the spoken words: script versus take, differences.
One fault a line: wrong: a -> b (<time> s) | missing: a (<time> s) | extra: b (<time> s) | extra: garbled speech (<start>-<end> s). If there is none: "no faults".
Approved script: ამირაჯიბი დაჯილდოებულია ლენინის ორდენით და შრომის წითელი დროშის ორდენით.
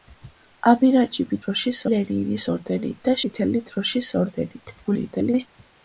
wrong: დაჯილდოებულია -> დროშის (1.4 s)
missing: შრომის (3.2 s)
extra: garbled speech (4.8-5.5 s)